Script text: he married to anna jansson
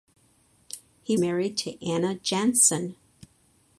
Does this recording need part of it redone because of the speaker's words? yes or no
no